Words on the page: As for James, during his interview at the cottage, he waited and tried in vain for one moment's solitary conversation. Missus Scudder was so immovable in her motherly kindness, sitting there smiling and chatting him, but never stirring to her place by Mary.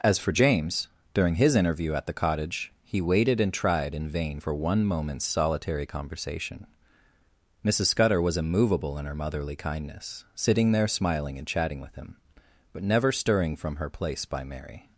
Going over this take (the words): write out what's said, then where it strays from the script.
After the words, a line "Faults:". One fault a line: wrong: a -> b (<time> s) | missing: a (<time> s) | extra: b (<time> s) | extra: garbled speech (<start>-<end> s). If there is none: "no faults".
As for James, during his interview at the cottage, he waited and tried in vain for one moment's solitary conversation. Missus Scudder was immovable in her motherly kindness, sitting there smiling and chatting with him, but never stirring from her place by Mary.
Faults:
missing: so (8.4 s)
extra: with (11.8 s)
wrong: to -> from (13.6 s)